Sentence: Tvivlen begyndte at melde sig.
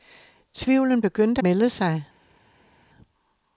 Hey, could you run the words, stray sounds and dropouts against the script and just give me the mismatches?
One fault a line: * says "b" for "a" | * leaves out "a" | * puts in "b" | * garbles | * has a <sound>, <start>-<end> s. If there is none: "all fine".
* leaves out "at"